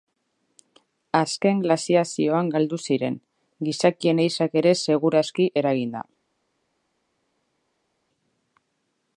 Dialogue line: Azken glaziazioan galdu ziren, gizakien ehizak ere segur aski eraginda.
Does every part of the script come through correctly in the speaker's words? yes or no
yes